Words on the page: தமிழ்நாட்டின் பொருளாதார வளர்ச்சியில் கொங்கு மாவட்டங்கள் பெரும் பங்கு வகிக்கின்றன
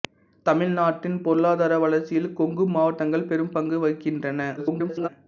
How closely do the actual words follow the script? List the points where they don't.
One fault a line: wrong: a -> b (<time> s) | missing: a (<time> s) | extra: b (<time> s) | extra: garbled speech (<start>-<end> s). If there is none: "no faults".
extra: garbled speech (4.6-5.1 s)